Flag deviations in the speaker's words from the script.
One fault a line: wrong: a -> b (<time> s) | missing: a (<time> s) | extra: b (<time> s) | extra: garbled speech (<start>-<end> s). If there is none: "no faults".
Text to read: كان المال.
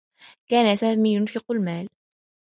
extra: سامي ينفق (0.7 s)